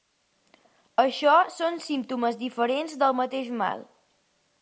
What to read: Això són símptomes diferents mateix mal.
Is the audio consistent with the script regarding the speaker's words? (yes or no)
no